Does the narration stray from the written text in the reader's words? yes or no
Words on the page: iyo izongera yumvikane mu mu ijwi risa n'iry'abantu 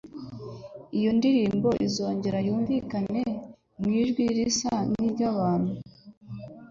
yes